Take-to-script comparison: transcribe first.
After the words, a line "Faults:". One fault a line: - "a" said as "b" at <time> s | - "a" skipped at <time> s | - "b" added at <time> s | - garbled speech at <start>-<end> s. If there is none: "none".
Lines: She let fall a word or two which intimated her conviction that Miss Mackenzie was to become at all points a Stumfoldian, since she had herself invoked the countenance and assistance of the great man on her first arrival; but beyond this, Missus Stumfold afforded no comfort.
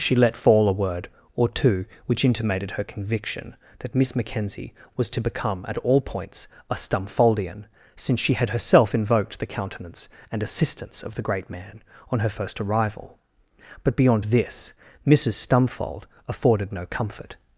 She let fall a word or two which intimated her conviction that Miss Mackenzie was to become at all points a Stumfoldian, since she had herself invoked the countenance and assistance of the great man on her first arrival; but beyond this, Missus Stumfold afforded no comfort.
Faults:
none